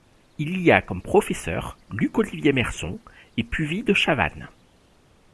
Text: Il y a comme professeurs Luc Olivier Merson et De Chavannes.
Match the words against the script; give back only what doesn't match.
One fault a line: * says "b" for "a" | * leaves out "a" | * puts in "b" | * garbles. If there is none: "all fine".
* puts in "Puvis"